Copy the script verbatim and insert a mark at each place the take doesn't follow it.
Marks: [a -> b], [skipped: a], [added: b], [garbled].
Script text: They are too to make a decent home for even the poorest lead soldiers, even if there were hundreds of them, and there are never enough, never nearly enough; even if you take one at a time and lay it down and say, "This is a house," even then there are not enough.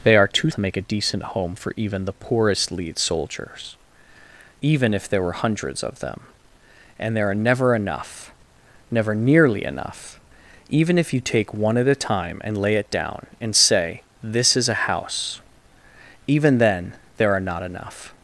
They are too to make a decent home for even the poorest lead soldiers, even if there were hundreds of them, and there are never enough, never nearly enough; even if you take one at a time and lay it down and say, "This is a house," even then there are not enough.